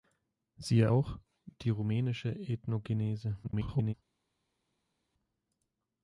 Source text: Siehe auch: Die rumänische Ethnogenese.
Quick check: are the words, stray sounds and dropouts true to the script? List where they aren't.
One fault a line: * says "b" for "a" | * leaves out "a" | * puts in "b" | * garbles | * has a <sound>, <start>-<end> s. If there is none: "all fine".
* garbles